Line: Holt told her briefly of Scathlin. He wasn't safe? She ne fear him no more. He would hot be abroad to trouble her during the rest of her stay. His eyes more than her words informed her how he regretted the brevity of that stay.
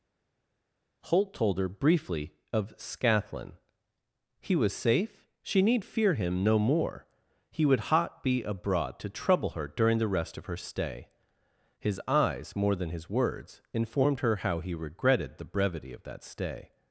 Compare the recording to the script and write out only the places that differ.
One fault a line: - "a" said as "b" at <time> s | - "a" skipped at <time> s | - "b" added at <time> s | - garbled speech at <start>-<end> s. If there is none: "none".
- "wasn't" said as "was" at 4.6 s
- "ne" said as "need" at 5.6 s
- "her" said as "his" at 12.9 s